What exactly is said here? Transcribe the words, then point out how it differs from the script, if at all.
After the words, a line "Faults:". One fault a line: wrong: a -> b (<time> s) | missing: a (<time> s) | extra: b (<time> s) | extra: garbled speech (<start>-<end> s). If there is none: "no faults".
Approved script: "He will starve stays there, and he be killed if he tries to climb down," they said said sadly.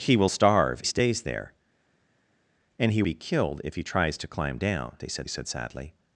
"He will starve stays there, and he be killed if he tries to climb down," they said said sadly.
Faults:
no faults